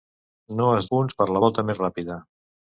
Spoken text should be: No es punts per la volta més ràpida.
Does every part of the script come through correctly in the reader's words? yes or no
yes